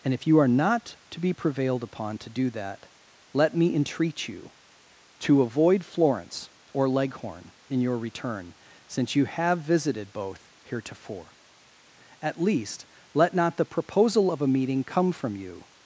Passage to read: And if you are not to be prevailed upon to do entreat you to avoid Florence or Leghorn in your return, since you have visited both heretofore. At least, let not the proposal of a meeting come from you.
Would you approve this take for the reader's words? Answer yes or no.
no